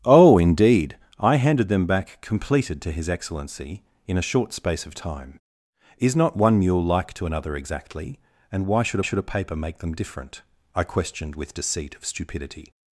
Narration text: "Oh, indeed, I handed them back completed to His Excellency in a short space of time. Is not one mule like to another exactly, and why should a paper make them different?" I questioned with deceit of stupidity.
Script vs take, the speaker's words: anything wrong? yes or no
yes